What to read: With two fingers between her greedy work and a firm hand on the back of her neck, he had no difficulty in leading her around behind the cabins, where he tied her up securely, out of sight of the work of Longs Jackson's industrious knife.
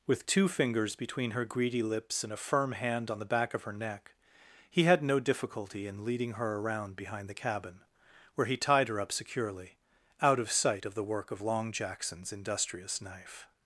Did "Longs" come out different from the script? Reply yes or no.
yes